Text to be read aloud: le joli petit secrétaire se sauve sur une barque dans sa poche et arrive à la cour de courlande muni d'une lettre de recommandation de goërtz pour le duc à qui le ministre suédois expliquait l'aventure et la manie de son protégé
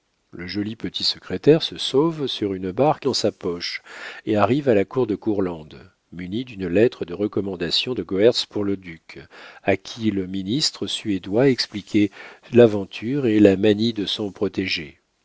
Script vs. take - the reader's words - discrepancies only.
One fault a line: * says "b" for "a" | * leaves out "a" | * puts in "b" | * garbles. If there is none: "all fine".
all fine